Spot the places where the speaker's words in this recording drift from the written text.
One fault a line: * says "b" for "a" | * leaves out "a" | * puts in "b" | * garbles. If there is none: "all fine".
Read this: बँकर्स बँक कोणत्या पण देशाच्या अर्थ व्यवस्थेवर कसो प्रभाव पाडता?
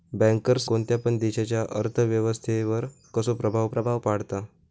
* leaves out "बँक"
* puts in "प्रभाव"